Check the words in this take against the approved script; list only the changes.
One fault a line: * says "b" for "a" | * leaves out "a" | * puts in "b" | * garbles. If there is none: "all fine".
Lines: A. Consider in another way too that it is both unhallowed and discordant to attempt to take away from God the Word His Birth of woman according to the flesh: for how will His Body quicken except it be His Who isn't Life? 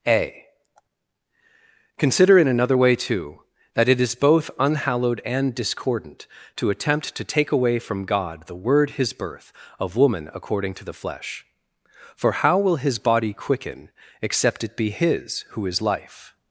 * says "is" for "isn't"